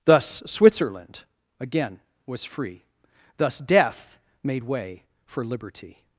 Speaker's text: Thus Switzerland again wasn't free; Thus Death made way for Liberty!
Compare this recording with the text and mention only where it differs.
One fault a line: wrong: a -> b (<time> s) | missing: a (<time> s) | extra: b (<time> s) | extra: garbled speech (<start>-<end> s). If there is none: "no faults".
wrong: wasn't -> was (2.2 s)